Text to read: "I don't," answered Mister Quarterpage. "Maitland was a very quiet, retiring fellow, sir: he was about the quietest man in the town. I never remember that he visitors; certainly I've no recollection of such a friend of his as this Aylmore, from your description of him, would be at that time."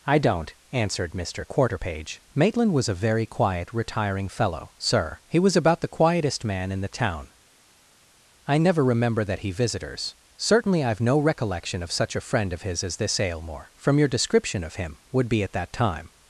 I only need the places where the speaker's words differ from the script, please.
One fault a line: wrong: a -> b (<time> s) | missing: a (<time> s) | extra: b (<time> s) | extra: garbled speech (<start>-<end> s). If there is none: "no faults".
no faults